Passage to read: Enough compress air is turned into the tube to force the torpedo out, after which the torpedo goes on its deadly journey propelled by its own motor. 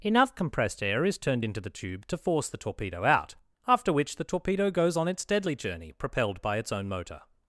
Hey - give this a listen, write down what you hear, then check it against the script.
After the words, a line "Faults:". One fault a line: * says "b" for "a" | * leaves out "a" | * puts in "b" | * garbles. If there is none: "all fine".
Enough compressed air is turned into the tube to force the torpedo out, after which the torpedo goes on its deadly journey propelled by its own motor.
Faults:
* says "compressed" for "compress"